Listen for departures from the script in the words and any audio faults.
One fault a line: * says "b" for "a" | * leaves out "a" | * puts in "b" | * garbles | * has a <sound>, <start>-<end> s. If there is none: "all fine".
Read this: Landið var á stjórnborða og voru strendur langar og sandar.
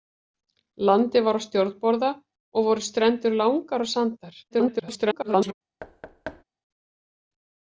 * garbles
* has a thud, 5.8-6.4 s